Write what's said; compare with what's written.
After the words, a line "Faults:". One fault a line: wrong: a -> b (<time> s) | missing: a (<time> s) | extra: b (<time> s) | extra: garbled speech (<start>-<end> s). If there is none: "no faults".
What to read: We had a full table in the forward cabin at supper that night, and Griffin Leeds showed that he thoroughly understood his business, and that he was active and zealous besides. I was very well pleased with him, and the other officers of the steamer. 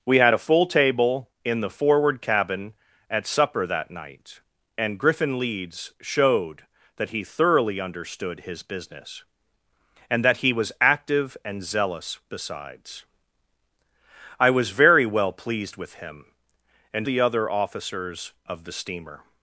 We had a full table in the forward cabin at supper that night, and Griffin Leeds showed that he thoroughly understood his business, and that he was active and zealous besides. I was very well pleased with him, and the other officers of the steamer.
Faults:
no faults